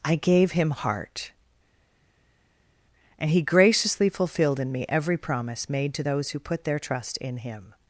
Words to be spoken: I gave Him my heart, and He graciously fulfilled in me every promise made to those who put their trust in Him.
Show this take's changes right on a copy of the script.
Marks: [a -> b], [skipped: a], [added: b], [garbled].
I gave Him [skipped: my] heart, and He graciously fulfilled in me every promise made to those who put their trust in Him.